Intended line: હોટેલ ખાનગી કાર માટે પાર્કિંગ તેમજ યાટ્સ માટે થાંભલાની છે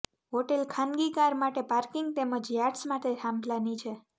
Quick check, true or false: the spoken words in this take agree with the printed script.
true